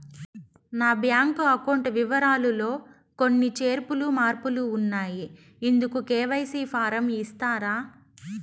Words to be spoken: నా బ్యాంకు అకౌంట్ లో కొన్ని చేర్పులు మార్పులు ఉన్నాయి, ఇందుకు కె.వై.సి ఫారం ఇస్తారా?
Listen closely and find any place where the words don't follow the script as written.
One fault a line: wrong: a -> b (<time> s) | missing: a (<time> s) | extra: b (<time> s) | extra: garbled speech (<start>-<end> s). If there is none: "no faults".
extra: వివరాలు (2.0 s)